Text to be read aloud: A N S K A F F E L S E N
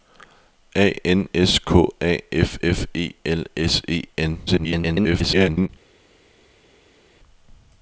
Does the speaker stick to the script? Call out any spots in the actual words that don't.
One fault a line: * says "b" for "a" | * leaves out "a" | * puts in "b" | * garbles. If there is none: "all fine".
* garbles